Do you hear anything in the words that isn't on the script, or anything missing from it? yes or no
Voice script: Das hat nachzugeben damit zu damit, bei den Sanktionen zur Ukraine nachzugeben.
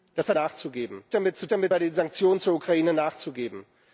no